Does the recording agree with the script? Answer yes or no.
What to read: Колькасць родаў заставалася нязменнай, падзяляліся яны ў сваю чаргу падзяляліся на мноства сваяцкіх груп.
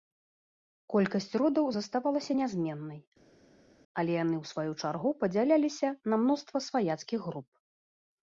no